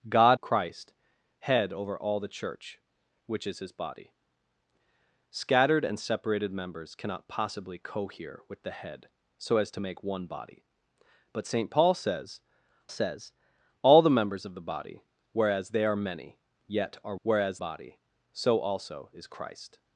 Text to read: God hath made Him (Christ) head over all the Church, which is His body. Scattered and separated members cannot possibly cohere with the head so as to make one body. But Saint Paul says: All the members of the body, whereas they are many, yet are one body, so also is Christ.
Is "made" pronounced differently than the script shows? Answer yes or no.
yes